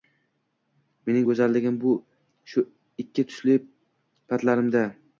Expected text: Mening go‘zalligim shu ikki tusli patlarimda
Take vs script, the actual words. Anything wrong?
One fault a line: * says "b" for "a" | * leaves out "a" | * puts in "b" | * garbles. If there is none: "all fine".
all fine